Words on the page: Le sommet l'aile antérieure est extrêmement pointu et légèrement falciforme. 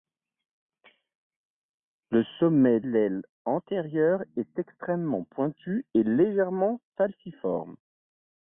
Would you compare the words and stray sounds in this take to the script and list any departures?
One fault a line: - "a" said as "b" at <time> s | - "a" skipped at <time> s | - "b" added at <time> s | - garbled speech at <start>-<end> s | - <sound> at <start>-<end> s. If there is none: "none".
none